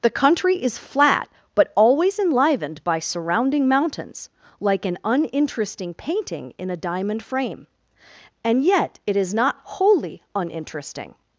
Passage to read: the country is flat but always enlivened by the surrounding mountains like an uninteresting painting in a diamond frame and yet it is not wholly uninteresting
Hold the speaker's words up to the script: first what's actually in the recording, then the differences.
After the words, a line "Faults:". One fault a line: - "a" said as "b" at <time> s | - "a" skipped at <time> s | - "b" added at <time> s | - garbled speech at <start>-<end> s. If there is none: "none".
the country is flat but always enlivened by surrounding mountains like an uninteresting painting in a diamond frame and yet it is not wholly uninteresting
Faults:
- "the" skipped at 3.0 s